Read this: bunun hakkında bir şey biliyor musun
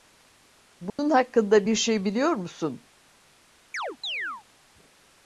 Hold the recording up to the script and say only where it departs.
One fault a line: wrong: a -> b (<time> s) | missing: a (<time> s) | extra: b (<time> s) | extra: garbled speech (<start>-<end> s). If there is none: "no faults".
no faults